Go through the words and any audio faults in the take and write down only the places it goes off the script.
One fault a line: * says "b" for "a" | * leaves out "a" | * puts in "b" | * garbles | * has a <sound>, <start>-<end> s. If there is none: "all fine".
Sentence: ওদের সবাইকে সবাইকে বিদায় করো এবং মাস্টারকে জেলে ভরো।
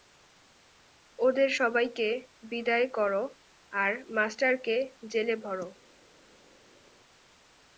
* leaves out "সবাইকে"
* says "আর" for "এবং"